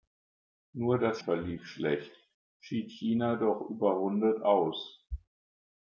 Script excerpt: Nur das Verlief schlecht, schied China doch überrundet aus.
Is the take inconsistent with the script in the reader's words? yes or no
no